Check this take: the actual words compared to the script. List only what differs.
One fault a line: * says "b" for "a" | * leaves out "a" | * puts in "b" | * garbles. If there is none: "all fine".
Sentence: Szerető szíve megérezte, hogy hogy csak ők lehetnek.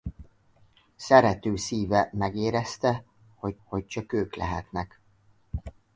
all fine